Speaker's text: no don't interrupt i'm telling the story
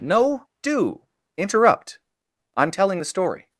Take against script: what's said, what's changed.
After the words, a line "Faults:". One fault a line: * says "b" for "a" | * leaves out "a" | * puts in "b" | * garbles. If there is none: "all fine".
no do interrupt i'm telling the story
Faults:
* says "do" for "don't"